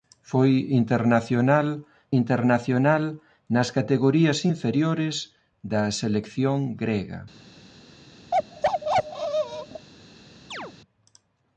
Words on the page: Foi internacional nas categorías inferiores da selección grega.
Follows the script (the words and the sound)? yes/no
no